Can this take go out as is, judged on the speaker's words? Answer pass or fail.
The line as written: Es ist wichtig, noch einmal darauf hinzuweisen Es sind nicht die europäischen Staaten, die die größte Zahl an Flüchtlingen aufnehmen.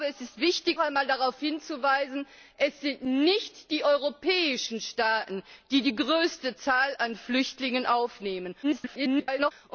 fail